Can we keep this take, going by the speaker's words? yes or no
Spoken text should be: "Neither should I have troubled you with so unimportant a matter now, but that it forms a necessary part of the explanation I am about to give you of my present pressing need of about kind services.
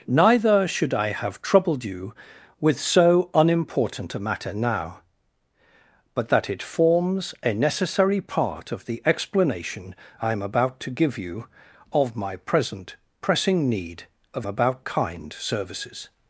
yes